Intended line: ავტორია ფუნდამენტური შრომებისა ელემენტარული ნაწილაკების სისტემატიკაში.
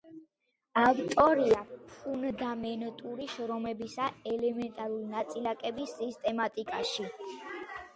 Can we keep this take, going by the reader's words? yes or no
yes